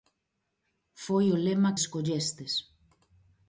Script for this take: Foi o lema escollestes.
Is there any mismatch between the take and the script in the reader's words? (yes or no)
no